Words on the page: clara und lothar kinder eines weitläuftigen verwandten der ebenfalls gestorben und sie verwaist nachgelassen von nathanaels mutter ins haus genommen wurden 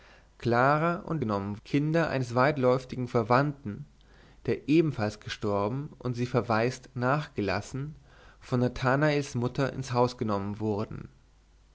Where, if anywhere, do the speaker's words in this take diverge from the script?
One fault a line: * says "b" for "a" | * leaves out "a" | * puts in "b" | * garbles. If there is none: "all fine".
* says "genommen" for "lothar"